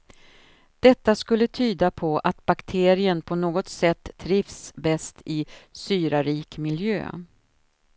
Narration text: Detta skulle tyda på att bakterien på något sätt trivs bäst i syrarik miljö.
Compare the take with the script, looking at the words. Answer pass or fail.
pass